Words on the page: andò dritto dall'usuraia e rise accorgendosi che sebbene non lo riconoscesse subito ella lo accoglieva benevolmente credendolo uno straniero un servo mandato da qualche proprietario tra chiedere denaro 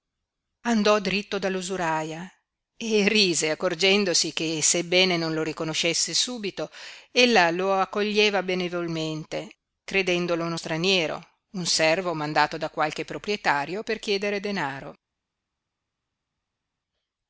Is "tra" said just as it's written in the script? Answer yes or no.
no